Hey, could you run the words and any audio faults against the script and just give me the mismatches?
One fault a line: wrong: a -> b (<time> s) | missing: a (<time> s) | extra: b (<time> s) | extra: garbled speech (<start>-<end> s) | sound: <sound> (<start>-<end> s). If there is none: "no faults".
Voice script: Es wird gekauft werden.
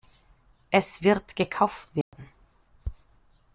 sound: dropout (2.0-2.1 s)